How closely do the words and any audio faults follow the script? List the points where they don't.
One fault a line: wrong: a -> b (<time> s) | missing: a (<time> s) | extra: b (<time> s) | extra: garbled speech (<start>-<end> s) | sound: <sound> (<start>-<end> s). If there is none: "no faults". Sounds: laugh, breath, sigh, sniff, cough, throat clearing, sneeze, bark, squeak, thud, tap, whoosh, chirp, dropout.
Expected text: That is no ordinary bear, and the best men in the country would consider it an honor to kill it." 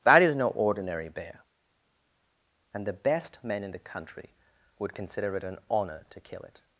no faults